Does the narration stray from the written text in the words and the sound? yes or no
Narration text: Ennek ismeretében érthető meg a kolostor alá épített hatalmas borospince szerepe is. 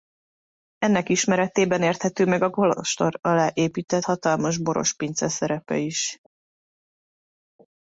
no